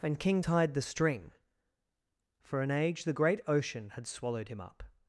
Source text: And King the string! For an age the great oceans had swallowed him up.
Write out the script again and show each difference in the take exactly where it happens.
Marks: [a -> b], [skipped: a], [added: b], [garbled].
And King [added: tied] the string! For an age the great [oceans -> ocean] had swallowed him up.